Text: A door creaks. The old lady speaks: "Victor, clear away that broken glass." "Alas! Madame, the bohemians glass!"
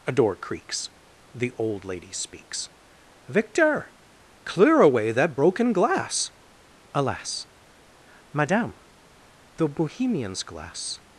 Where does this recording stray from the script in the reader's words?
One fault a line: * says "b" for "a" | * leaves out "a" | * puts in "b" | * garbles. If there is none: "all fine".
all fine